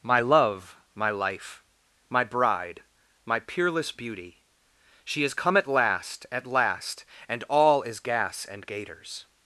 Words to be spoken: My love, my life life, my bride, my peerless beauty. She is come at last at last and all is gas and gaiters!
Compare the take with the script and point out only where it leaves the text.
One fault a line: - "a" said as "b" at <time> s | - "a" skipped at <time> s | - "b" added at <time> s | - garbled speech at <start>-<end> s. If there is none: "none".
- "life" skipped at 1.6 s